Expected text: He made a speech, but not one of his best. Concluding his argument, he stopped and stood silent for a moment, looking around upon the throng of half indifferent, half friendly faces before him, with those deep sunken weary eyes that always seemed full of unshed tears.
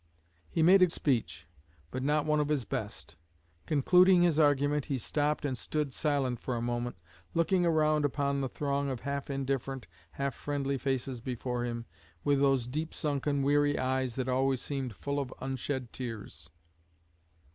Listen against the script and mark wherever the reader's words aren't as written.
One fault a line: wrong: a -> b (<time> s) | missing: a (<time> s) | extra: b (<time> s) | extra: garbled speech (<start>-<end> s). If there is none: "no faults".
no faults